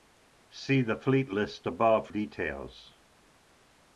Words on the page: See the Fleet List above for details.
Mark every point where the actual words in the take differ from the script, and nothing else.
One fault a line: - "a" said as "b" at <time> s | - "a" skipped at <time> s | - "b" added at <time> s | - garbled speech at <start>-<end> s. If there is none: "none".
- "for" skipped at 2.1 s